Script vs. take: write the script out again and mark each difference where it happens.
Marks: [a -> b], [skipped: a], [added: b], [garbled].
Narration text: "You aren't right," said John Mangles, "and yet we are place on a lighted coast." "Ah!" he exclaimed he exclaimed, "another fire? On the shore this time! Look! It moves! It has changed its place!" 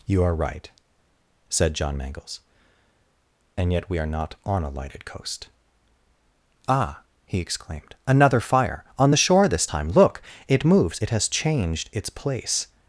"You [aren't -> are] right," said John Mangles, "and yet we are [place -> not] on a lighted coast." "Ah!" he exclaimed [skipped: he exclaimed,] "another fire? On the shore this time! Look! It moves! It has changed its place!"